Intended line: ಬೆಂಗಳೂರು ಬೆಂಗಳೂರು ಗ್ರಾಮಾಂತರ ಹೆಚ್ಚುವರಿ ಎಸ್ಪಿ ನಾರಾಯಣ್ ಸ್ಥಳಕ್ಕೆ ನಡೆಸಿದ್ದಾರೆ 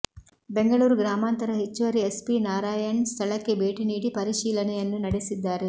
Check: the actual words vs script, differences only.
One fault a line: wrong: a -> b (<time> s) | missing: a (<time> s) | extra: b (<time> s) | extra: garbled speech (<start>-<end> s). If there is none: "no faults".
missing: ಬೆಂಗಳೂರು (0.9 s)
extra: ಭೇಟಿ ನೀಡಿ ಪರಿಶೀಲನೆಯನ್ನು (3.5 s)